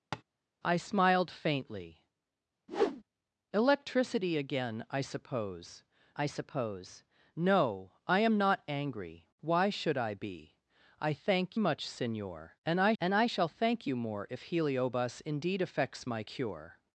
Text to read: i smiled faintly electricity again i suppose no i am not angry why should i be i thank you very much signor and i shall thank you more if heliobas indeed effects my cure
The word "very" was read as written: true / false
false